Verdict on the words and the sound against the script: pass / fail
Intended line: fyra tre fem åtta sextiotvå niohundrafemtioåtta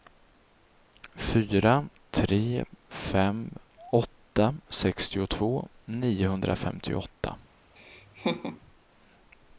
fail